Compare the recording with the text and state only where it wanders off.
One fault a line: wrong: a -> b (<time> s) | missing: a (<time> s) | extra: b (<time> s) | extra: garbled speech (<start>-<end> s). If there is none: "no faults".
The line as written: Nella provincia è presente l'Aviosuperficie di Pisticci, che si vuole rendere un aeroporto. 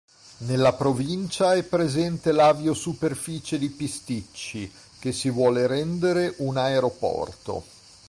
no faults